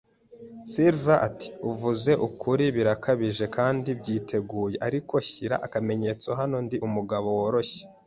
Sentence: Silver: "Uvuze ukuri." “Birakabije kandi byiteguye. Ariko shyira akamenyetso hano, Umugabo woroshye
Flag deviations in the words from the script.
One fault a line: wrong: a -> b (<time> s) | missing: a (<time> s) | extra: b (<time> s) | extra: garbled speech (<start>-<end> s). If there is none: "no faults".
extra: ati (1.3 s)
extra: Ndi (6.6 s)